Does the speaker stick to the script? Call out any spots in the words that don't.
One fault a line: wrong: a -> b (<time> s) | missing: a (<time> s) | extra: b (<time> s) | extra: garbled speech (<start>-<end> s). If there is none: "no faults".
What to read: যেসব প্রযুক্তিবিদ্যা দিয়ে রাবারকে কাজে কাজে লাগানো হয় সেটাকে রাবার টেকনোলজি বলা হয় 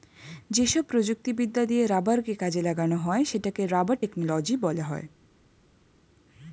missing: কাজে (2.6 s)